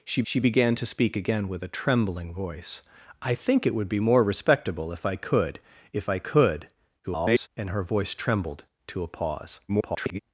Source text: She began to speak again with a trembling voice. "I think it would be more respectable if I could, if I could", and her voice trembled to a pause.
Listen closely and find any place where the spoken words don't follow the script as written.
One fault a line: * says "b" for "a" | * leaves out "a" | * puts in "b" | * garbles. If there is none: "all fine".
* puts in "she"
* garbles
* garbles